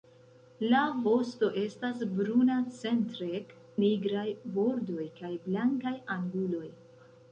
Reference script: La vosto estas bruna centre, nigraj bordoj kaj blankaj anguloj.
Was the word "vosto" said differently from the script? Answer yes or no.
no